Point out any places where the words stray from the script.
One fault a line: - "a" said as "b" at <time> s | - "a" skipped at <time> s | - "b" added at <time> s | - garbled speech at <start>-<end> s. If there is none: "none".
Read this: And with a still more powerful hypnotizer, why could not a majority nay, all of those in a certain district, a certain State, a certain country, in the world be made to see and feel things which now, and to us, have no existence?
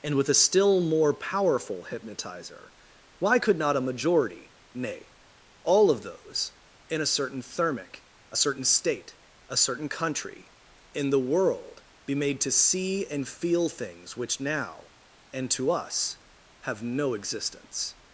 - "district" said as "thermic" at 7.4 s